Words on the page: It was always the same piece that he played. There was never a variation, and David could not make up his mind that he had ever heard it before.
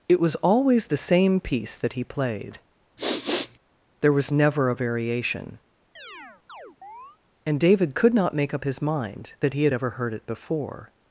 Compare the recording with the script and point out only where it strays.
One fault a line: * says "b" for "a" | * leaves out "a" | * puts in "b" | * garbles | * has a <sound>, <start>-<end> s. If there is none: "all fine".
* has a sniff, 3.0-3.6 s
* has a chirp, 6.0-7.2 s